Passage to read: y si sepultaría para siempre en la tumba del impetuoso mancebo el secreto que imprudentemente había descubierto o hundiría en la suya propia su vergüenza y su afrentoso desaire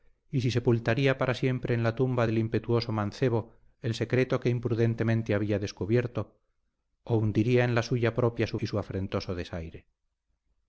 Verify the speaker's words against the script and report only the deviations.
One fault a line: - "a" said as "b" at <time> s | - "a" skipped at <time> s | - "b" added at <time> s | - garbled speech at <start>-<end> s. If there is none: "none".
- "vergüenza" skipped at 8.6 s